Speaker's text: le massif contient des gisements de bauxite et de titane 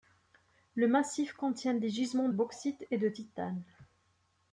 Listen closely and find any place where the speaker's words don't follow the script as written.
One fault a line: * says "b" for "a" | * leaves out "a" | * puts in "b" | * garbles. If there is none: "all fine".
* leaves out "de"